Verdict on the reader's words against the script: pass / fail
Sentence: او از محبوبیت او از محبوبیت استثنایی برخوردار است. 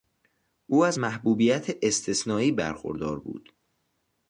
fail